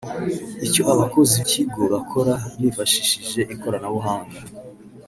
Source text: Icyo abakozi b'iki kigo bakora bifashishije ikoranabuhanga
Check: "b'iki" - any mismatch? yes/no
yes